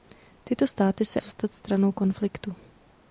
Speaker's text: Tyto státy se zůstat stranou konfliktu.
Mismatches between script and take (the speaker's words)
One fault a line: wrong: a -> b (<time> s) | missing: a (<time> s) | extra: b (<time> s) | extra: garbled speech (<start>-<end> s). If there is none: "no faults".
no faults